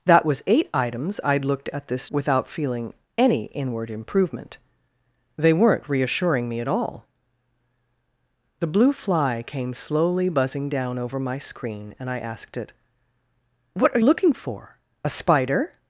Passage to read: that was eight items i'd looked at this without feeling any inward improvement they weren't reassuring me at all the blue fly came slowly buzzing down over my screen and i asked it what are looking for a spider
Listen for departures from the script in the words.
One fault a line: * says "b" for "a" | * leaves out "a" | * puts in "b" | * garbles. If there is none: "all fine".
all fine